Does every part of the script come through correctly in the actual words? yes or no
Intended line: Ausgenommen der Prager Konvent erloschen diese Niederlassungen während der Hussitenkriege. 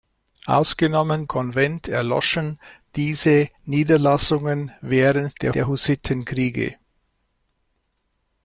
no